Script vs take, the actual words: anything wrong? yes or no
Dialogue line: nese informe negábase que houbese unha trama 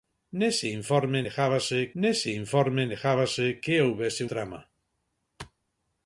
yes